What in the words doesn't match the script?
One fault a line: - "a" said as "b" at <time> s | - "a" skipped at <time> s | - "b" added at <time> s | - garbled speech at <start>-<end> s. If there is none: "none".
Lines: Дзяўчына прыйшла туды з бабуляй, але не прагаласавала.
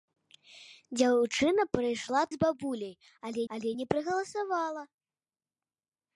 - "туды" skipped at 2.2 s
- "але" added at 3.5 s